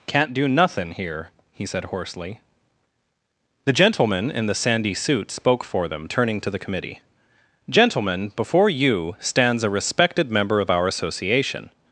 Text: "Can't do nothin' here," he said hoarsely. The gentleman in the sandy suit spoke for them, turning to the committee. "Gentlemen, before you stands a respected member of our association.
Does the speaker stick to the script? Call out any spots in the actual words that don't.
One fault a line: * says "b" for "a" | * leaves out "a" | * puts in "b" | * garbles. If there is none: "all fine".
all fine